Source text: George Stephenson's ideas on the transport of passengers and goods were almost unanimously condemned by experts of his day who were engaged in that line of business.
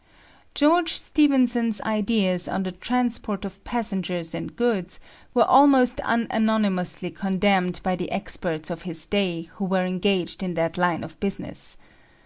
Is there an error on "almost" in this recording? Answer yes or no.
no